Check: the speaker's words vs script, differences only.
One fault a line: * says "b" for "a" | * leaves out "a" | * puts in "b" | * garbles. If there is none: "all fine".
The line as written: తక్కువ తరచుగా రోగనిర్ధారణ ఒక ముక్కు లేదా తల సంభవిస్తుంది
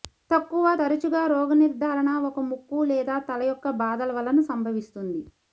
* puts in "యొక్క బాధల వలన"